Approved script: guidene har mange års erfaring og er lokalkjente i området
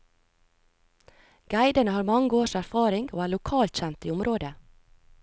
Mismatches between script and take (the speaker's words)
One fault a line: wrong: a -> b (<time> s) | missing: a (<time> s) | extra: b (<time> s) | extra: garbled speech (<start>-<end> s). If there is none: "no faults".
no faults